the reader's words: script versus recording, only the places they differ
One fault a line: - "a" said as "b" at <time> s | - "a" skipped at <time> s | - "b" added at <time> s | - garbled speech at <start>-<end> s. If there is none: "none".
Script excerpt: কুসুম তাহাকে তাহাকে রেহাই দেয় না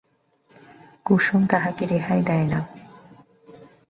- "তাহাকে" skipped at 1.8 s